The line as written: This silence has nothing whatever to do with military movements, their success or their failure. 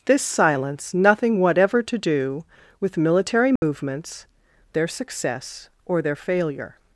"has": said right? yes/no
no